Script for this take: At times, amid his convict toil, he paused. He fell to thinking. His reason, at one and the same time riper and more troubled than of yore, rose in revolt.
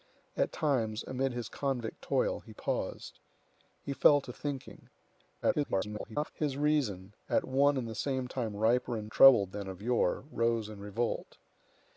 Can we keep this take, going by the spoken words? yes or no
no